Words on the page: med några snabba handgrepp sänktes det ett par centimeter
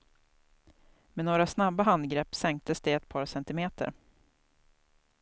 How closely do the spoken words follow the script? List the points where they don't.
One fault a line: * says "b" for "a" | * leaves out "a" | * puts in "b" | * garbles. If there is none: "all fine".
all fine